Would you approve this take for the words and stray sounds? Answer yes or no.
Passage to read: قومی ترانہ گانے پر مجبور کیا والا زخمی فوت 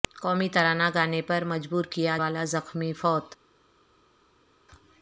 yes